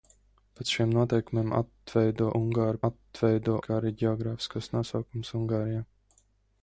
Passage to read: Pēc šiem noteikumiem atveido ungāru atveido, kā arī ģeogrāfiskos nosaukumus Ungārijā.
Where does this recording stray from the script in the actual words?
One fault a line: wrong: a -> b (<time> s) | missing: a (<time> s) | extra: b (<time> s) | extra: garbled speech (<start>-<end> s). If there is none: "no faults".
no faults